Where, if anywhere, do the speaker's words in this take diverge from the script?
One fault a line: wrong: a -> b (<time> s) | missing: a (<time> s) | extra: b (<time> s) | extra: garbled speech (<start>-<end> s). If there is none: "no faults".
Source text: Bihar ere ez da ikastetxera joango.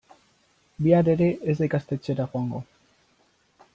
no faults